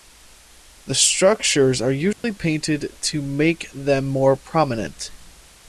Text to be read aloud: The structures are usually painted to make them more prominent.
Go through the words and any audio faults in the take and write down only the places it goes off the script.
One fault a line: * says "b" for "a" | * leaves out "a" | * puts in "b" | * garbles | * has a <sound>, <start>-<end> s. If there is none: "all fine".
* has a dropout, 2.1-2.2 s